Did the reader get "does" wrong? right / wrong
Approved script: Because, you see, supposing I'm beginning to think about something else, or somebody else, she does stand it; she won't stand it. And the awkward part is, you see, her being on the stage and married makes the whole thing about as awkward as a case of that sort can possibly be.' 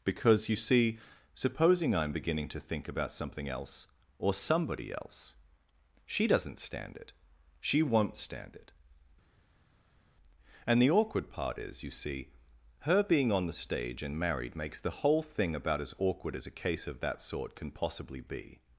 wrong